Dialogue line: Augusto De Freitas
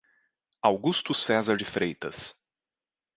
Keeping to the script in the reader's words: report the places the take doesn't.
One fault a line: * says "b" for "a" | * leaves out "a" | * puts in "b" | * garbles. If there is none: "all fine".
* puts in "Cesar"